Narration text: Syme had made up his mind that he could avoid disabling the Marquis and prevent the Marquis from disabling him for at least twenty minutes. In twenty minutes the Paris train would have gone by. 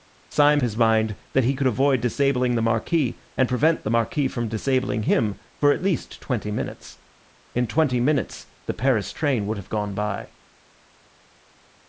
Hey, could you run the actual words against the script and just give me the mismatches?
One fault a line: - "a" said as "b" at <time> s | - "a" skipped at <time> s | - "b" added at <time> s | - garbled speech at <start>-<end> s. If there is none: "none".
- "had made up" skipped at 0.6 s